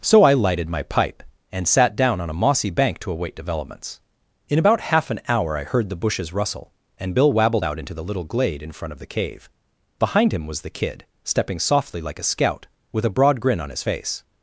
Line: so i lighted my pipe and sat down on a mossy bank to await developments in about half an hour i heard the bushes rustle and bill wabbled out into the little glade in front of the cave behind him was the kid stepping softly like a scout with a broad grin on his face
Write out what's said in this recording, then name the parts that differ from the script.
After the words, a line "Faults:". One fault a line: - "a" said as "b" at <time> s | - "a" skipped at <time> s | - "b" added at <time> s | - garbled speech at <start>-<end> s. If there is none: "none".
so i lighted my pipe and sat down on a mossy bank to await developments in about half an hour i heard the bushes rustle and bill wabbled out into the little glade in front of the cave behind him was the kid stepping softly like a scout with a broad grin on his face
Faults:
none